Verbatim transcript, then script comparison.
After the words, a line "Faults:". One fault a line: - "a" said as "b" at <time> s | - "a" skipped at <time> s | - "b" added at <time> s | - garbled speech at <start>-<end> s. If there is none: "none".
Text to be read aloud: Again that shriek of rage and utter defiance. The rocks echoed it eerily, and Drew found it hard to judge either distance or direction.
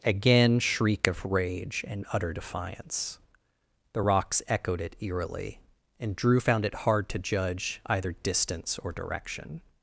Again shriek of rage and utter defiance. The rocks echoed it eerily, and Drew found it hard to judge either distance or direction.
Faults:
- "that" skipped at 0.6 s